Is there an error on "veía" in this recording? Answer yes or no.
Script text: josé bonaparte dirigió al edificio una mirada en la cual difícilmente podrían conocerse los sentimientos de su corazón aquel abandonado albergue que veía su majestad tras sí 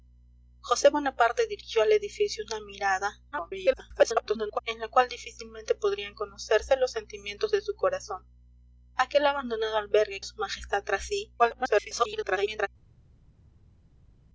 yes